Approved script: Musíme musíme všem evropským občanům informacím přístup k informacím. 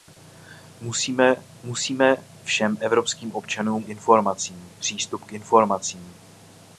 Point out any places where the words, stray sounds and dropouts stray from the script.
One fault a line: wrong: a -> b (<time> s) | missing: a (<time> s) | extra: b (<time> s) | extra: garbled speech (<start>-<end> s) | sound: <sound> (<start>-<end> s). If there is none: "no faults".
no faults